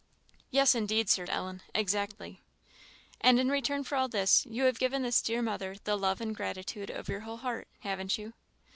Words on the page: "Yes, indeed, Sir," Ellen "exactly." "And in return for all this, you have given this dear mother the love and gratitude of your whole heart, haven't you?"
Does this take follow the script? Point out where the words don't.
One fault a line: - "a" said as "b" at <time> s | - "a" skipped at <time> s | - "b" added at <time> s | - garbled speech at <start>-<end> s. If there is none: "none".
none